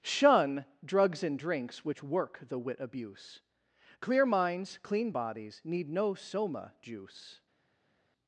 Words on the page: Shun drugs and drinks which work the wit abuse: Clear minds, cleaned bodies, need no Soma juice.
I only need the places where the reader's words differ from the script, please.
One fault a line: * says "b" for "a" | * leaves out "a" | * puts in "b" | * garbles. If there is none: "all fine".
* says "clean" for "cleaned"